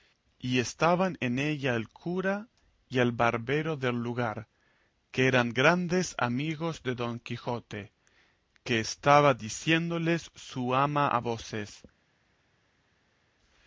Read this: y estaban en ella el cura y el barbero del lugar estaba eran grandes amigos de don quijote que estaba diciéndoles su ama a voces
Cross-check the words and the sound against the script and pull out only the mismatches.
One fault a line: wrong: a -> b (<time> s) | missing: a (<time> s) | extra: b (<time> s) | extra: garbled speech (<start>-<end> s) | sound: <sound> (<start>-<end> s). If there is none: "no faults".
wrong: estaba -> que (5.1 s)